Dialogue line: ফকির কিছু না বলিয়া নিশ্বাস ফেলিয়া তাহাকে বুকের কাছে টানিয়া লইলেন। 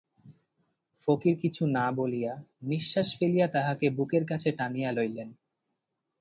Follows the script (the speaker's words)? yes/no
yes